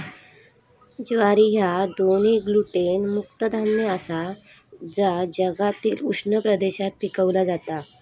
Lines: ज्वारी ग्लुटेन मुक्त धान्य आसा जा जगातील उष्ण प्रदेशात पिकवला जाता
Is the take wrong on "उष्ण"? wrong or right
right